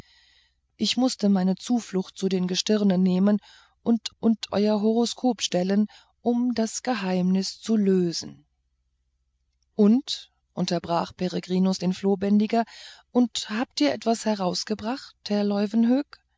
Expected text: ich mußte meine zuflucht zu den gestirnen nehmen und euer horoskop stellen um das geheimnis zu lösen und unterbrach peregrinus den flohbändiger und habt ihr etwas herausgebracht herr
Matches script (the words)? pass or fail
fail